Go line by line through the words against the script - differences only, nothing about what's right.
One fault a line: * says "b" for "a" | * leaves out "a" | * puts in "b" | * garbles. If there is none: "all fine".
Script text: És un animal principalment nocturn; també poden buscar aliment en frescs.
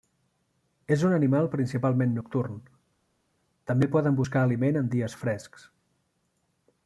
* puts in "dies"